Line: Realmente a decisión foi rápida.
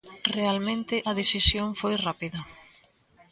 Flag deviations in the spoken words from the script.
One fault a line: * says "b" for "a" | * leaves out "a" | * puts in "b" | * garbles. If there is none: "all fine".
all fine